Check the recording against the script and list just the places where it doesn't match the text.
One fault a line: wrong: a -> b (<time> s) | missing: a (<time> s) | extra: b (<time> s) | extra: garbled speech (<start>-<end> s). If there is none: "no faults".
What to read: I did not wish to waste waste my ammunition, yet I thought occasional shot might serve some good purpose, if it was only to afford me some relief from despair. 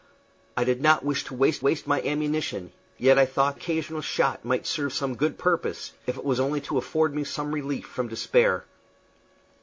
no faults